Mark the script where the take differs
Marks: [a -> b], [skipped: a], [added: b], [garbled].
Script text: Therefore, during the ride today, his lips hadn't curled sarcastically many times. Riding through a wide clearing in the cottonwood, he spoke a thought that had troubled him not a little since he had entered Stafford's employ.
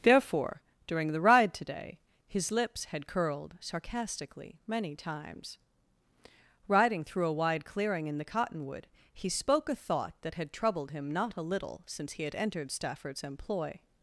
Therefore, during the ride today, his lips [hadn't -> had] curled sarcastically many times. Riding through a wide clearing in the cottonwood, he spoke a thought that had troubled him not a little since he had entered Stafford's employ.